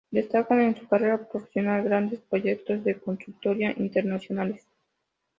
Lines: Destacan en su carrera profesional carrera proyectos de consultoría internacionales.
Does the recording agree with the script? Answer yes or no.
no